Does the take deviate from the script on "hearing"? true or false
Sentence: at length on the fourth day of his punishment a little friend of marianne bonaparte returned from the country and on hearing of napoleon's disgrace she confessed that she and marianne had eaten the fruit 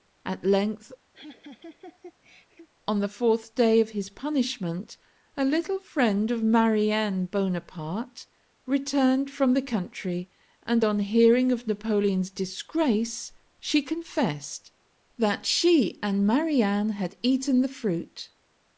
false